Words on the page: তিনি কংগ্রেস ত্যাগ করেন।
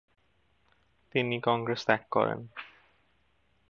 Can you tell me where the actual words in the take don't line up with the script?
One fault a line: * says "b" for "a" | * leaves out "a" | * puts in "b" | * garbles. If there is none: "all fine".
all fine